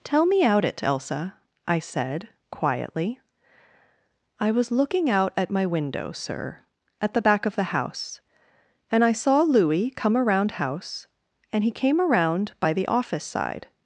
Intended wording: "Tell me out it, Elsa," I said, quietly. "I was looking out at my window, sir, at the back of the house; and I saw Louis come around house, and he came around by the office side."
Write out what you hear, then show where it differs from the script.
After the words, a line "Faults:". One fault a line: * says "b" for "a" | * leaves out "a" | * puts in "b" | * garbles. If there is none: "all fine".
"Tell me out it, Elsa," I said, quietly. "I was looking out at my window, sir, at the back of the house; and I saw Louis come around house, and he came around by the office side."
Faults:
all fine